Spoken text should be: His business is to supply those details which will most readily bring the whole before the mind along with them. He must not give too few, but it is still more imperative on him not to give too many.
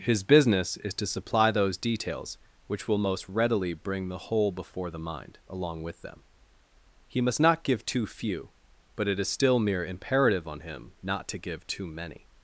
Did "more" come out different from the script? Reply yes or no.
yes